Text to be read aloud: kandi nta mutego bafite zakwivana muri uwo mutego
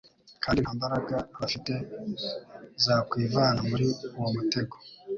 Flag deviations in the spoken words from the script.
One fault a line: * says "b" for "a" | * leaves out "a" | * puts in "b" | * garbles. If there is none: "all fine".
* says "mbaraga" for "mutego"